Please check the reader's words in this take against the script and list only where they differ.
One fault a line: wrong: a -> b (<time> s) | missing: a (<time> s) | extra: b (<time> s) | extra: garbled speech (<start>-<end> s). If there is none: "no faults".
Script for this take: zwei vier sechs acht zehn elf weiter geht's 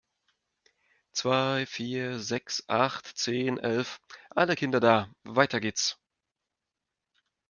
extra: alle kinder da (4.3 s)